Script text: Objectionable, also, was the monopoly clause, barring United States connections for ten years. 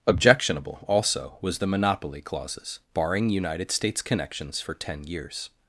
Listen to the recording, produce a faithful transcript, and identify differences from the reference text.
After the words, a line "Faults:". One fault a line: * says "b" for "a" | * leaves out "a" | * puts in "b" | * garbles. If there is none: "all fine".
Objectionable, also, was the monopoly clauses, barring United States connections for ten years.
Faults:
* says "clauses" for "clause"